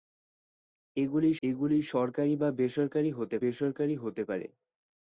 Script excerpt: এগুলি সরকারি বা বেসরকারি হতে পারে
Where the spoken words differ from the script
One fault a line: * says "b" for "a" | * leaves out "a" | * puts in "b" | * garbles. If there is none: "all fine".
* puts in "এগুলি"
* puts in "বেসরকারি হতে"